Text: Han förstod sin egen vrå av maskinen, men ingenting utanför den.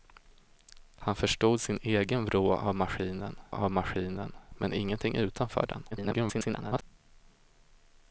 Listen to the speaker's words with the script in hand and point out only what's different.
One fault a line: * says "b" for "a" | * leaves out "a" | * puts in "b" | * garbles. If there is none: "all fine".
* puts in "av maskinen"
* garbles